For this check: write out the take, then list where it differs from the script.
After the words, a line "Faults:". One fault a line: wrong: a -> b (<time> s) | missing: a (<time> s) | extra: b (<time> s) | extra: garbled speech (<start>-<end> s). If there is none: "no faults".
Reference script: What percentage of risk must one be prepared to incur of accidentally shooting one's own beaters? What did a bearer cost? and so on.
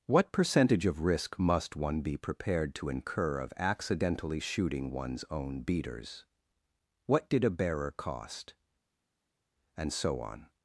What percentage of risk must one be prepared to incur of accidentally shooting one's own beaters? What did a bearer cost? and so on.
Faults:
no faults